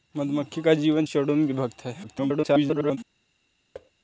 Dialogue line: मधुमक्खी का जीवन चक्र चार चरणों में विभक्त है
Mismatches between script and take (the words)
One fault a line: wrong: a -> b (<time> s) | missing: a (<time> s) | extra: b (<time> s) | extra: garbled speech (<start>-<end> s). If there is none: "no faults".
missing: चक्र चार (1.1 s)
extra: garbled speech (2.0-3.0 s)